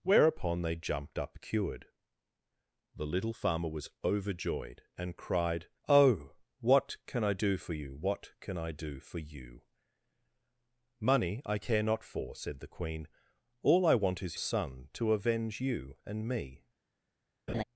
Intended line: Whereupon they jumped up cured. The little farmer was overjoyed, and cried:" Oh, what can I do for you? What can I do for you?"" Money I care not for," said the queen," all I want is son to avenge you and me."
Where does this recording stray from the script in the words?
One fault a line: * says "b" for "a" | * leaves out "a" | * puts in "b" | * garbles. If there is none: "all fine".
all fine